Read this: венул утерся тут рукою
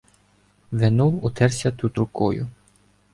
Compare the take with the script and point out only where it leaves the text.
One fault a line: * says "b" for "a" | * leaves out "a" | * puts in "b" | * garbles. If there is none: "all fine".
all fine